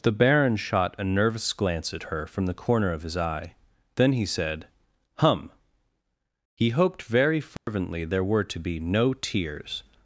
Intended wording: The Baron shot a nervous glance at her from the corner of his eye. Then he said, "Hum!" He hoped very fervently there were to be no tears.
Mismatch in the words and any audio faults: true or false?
true